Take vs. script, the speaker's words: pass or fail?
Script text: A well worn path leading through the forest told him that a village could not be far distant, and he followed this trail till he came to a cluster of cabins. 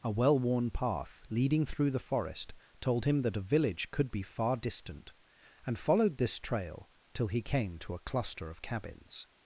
fail